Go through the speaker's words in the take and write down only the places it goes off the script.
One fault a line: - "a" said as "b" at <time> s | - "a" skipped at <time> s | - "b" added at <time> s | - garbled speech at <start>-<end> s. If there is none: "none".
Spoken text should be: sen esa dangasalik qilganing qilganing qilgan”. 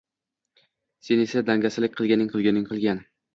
none